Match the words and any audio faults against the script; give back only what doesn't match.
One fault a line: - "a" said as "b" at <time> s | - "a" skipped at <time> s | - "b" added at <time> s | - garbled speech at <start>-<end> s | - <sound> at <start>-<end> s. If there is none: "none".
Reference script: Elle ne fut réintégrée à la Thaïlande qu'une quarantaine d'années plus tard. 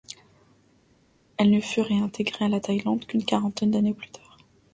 none